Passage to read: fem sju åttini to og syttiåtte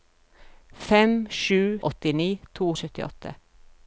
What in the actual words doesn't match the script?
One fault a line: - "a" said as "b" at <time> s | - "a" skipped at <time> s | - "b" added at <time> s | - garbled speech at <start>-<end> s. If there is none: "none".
none